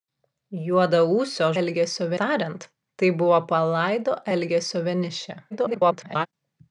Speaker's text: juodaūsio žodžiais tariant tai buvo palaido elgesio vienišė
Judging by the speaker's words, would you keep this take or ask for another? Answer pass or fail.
fail